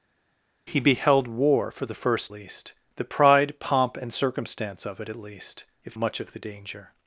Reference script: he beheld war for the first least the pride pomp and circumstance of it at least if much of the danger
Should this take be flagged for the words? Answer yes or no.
no